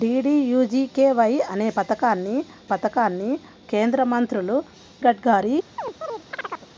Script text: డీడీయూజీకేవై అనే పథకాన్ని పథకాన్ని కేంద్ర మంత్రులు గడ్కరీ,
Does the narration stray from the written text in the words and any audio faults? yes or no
yes